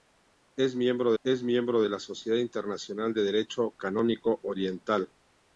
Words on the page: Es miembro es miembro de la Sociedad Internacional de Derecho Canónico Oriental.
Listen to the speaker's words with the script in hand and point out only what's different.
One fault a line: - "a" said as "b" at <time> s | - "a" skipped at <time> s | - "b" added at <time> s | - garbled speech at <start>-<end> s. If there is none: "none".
none